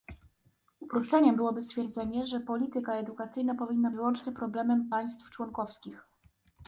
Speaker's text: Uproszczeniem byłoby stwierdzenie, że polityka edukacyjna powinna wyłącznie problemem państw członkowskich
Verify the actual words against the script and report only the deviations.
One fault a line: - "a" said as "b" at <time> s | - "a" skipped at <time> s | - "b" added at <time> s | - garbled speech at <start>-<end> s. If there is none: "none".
none